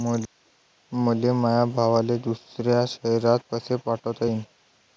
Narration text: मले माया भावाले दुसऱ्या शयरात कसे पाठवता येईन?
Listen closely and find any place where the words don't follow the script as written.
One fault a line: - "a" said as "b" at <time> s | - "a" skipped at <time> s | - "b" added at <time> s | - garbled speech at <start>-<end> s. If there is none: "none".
none